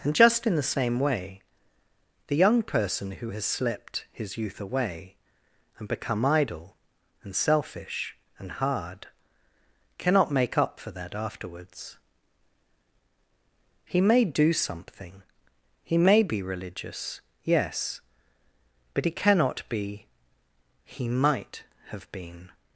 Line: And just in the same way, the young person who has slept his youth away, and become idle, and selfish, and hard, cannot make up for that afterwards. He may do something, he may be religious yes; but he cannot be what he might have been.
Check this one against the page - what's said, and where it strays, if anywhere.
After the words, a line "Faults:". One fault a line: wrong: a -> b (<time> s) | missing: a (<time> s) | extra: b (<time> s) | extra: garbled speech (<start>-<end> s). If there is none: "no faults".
And just in the same way, the young person who has slept his youth away, and become idle, and selfish, and hard, cannot make up for that afterwards. He may do something, he may be religious yes; but he cannot be he might have been.
Faults:
missing: what (20.1 s)